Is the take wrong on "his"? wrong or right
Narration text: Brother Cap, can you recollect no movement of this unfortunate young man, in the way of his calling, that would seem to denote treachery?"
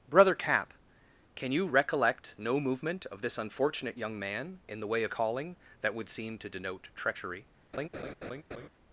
wrong